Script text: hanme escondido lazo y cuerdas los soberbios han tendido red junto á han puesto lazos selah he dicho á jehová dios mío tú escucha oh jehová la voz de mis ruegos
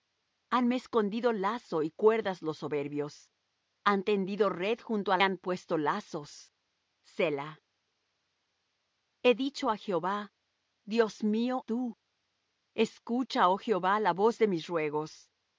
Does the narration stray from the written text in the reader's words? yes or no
no